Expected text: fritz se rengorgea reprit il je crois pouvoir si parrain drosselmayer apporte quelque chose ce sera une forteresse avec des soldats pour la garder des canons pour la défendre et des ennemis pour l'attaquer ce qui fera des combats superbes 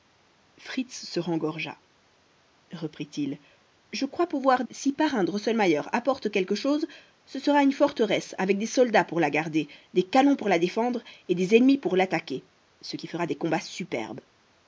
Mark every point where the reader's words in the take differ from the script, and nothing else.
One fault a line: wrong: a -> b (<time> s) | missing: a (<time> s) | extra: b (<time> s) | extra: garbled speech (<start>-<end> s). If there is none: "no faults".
no faults